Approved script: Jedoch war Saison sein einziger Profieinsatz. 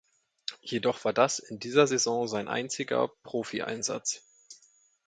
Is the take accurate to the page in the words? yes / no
no